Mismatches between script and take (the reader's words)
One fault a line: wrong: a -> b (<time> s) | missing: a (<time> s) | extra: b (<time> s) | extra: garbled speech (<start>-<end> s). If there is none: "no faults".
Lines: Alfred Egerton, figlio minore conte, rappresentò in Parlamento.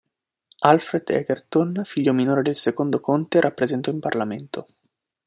extra: del secondo (2.4 s)